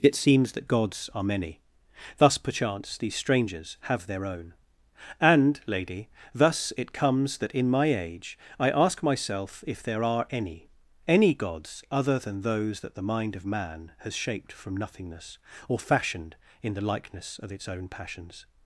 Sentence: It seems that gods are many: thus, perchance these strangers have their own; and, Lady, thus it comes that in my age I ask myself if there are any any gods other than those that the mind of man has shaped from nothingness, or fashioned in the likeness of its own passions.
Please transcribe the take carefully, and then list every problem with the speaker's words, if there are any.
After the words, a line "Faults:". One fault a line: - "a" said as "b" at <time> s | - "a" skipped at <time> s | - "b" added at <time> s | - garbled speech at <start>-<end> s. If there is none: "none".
It seems that gods are many: thus, perchance these strangers have their own; and, Lady, thus it comes that in my age I ask myself if there are any any gods other than those that the mind of man has shaped from nothingness, or fashioned in the likeness of its own passions.
Faults:
none